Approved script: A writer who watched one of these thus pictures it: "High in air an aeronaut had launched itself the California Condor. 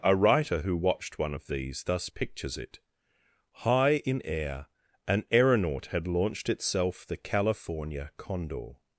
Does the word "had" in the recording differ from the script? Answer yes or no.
no